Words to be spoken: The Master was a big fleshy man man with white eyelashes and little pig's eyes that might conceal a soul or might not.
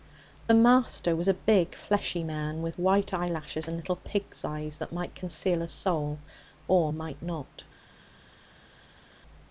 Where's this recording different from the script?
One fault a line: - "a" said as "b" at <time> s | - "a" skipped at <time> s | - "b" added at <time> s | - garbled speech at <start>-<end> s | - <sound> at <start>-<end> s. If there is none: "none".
- "man" skipped at 2.6 s